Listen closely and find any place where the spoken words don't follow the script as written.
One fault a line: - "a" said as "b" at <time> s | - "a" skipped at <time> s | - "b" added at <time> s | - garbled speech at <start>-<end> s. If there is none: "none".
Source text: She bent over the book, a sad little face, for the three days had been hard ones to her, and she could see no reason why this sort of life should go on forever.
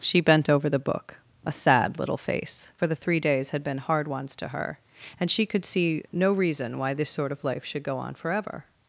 none